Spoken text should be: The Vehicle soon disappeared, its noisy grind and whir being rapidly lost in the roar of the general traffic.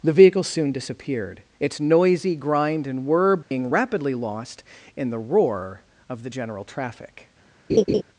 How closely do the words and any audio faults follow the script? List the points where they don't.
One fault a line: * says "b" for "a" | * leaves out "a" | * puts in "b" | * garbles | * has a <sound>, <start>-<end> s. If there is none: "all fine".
* has a dropout, 3.4-3.5 s
* has a laugh, 7.7-8.0 s